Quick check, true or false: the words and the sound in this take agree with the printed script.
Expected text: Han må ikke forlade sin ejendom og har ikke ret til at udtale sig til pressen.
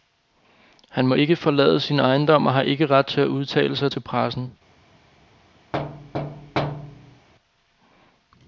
false